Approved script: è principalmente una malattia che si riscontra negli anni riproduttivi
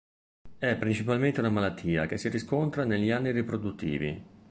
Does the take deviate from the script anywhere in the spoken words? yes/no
no